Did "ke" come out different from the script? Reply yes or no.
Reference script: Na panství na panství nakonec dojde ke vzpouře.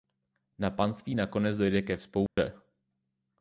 no